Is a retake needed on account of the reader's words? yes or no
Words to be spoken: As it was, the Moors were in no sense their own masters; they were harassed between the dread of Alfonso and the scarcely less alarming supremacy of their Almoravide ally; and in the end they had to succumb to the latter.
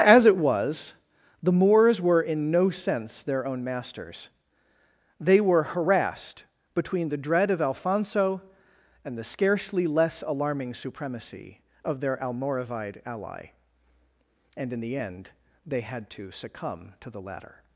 no